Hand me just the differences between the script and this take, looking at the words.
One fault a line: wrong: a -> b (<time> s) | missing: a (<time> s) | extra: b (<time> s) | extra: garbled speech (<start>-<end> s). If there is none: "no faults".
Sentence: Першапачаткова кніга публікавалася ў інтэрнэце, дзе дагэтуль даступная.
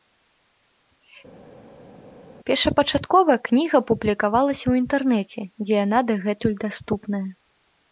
extra: яна (5.9 s)